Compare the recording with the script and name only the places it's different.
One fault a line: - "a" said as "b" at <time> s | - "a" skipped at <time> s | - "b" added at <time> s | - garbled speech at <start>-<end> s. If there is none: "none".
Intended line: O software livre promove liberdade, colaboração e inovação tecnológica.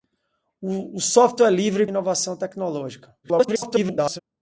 - "promove liberdade colaboração" skipped at 1.9 s
- garbled speech at 3.2-4.2 s